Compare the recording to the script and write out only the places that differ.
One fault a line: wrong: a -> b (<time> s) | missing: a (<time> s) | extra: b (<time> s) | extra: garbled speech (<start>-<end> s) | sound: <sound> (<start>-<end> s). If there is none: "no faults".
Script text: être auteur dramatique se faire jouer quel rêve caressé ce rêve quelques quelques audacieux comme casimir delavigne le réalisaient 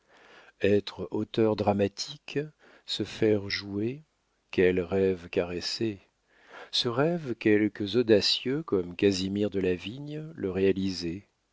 missing: quelques (8.0 s)